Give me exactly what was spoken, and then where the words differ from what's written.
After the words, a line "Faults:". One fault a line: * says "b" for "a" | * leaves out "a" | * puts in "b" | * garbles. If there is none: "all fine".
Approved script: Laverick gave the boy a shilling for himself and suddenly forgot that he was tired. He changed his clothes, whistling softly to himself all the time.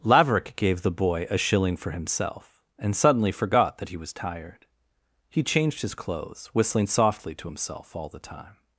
Laverick gave the boy a shilling for himself and suddenly forgot that he was tired. He changed his clothes, whistling softly to himself all the time.
Faults:
all fine